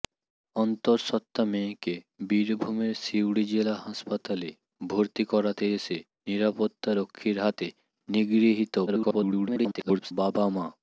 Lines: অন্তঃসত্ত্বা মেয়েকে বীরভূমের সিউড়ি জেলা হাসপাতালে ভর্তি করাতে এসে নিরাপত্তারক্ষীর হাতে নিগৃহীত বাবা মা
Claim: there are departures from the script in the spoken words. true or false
true